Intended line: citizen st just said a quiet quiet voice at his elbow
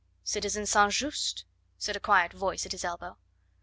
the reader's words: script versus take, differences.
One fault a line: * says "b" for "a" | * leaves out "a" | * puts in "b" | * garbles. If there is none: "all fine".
* leaves out "quiet"